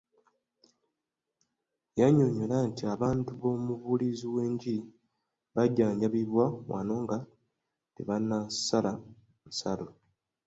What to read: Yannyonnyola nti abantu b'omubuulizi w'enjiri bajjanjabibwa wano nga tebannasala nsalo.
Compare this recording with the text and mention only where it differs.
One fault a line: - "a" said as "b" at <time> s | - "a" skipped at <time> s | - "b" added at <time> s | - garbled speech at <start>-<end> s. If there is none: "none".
none